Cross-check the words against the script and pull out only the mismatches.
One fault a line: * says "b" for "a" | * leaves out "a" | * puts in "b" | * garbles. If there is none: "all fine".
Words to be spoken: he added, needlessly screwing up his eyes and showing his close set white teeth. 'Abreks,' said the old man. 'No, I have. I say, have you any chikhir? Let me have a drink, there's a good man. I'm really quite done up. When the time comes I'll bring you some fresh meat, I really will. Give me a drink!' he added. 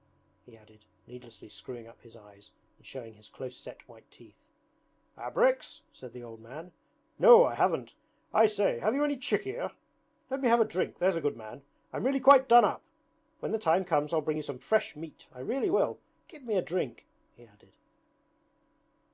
* says "haven't" for "have"